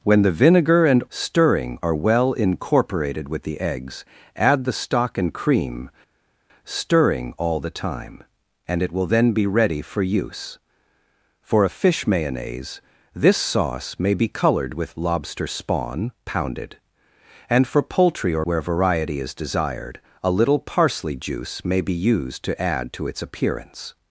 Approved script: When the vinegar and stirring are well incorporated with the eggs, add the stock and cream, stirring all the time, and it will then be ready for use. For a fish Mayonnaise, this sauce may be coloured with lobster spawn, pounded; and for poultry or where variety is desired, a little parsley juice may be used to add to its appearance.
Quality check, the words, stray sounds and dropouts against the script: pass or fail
pass